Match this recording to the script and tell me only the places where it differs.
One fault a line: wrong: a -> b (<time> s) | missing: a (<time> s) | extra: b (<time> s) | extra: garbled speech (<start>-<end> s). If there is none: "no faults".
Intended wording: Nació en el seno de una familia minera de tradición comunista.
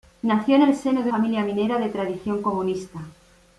missing: una (1.1 s)